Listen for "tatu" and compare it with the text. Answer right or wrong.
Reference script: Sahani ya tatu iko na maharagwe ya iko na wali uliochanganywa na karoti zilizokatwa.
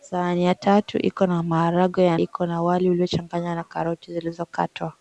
right